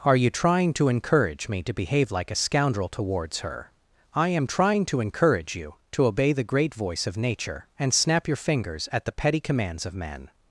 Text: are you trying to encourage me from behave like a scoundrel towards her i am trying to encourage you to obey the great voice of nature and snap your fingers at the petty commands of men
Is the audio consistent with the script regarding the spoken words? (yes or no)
no